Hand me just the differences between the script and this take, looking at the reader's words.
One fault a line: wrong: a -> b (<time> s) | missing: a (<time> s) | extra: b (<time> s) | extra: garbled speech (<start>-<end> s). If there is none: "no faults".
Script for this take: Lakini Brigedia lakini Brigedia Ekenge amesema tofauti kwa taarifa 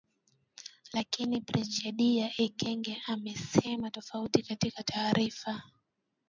missing: lakini Brigedia (2.3 s)
wrong: kwa -> katika (4.4 s)